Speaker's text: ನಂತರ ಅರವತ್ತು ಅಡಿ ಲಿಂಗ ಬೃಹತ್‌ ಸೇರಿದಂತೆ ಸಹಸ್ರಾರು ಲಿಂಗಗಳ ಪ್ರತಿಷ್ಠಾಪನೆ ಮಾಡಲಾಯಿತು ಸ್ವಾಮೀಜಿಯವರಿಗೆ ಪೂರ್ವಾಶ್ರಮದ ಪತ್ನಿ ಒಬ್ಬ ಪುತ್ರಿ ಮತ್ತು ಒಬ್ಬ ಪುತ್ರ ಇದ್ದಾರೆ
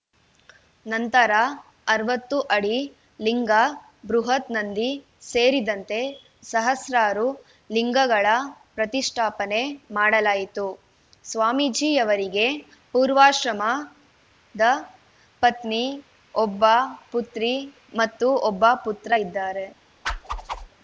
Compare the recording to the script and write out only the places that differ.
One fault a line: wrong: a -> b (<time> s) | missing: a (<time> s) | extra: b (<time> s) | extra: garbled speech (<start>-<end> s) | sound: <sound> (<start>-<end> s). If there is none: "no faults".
extra: ನಂದಿ (4.5 s)
sound: whoosh (20.0-20.7 s)